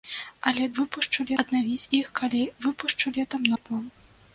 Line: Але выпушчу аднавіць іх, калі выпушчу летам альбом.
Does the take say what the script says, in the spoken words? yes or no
yes